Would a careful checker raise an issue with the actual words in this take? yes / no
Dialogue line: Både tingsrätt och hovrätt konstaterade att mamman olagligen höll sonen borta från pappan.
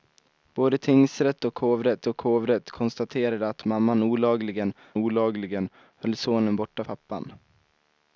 yes